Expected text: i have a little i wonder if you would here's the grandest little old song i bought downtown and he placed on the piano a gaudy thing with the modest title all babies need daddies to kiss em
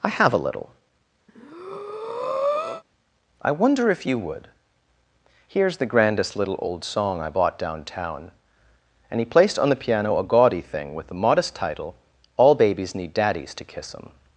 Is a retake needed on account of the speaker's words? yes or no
no